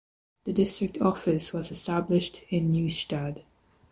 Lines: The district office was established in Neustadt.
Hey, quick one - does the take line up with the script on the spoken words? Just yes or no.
yes